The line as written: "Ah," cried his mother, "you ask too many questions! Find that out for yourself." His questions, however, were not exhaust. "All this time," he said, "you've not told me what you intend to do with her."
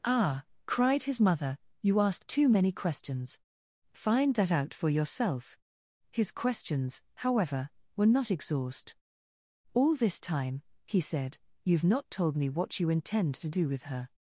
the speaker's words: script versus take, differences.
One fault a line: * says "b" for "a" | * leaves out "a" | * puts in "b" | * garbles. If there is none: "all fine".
all fine